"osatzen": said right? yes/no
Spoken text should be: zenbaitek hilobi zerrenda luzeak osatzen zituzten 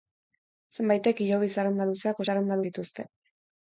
no